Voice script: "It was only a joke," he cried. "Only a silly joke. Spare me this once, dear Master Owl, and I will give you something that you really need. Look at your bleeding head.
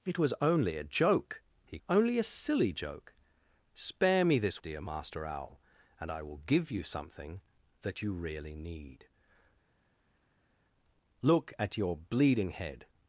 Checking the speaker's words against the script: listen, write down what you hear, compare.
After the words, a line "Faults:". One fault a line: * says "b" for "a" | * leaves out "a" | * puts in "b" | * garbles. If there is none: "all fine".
"It was only a joke," he. "Only a silly joke. Spare me this dear Master Owl, and I will give you something that you really need. Look at your bleeding head.
Faults:
* leaves out "cried"
* leaves out "once"